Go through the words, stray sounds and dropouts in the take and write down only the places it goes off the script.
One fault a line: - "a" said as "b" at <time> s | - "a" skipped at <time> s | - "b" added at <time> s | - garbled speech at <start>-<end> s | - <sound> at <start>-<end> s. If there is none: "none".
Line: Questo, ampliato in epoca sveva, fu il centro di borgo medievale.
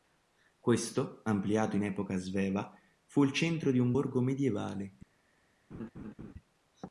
- "un" added at 3.8 s
- laugh at 5.7-6.3 s